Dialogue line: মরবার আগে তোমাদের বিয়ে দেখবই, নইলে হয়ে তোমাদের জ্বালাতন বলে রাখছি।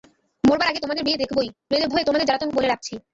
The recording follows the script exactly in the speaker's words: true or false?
true